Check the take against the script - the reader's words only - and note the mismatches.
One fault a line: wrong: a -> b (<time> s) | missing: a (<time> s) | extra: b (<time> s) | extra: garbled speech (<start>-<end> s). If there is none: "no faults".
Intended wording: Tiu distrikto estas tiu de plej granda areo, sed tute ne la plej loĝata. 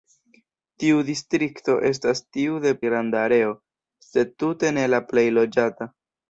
missing: plej (2.7 s)